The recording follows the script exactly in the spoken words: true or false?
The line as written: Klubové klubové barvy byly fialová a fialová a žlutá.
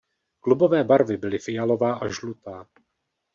false